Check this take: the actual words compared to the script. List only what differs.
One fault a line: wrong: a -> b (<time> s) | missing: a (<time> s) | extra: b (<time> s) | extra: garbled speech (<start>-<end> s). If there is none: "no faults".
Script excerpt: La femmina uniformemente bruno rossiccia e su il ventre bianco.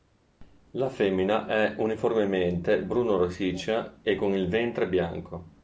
extra: è (1.4 s)
wrong: su -> con (4.2 s)